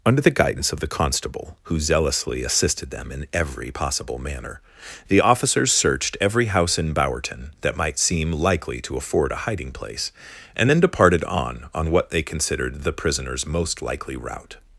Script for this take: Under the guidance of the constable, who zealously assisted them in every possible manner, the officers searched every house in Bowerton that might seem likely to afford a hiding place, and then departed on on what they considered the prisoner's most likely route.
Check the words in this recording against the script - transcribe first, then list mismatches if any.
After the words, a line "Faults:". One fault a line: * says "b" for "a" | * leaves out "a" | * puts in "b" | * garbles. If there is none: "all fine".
Under the guidance of the constable, who zealously assisted them in every possible manner, the officers searched every house in Bowerton that might seem likely to afford a hiding place, and then departed on on what they considered the prisoner's most likely route.
Faults:
all fine